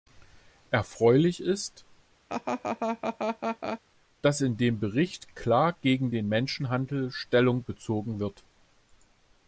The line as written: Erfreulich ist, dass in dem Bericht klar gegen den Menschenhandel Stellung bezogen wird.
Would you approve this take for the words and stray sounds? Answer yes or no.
no